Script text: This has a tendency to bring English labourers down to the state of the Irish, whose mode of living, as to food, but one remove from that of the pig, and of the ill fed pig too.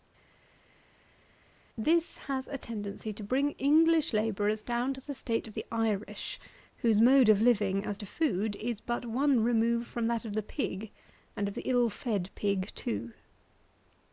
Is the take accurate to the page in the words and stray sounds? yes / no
no